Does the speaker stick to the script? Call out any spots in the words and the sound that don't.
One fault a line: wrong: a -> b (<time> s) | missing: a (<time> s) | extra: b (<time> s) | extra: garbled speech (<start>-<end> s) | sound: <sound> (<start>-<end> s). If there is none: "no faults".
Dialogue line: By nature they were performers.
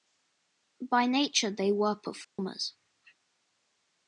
sound: dropout (2.2-2.4 s)